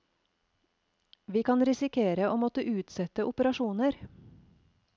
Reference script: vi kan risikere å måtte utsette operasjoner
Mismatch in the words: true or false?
false